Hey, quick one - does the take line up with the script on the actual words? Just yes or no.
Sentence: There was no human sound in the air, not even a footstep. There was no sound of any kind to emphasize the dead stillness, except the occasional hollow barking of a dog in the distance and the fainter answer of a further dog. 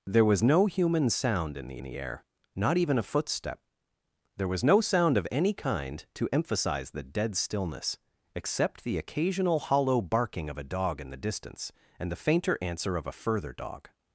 no